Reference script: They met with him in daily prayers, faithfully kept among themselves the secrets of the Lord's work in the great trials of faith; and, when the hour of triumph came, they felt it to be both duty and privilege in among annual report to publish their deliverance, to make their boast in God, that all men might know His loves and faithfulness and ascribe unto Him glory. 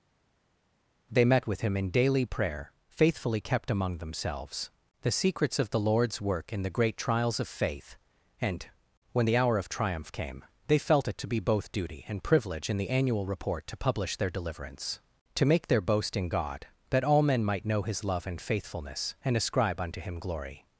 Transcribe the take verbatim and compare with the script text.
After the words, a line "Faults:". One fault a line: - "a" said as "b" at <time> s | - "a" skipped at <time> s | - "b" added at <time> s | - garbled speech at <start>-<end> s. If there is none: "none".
They met with him in daily prayer, faithfully kept among themselves the secrets of the Lord's work in the great trials of faith; and, when the hour of triumph came, they felt it to be both duty and privilege in the annual report to publish their deliverance, to make their boast in God, that all men might know His love and faithfulness and ascribe unto Him glory.
Faults:
- "prayers" said as "prayer" at 2.3 s
- "among" said as "the" at 12.8 s
- "loves" said as "love" at 18.0 s